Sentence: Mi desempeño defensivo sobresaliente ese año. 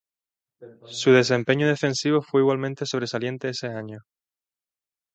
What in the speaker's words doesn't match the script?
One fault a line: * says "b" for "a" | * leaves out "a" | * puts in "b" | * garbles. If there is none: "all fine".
* says "Su" for "Mi"
* puts in "fue igualmente"